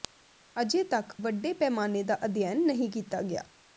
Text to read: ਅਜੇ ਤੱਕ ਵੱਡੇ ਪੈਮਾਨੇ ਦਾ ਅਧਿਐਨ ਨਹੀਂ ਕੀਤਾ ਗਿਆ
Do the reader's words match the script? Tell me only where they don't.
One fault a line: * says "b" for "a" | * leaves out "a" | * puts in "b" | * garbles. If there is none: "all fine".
all fine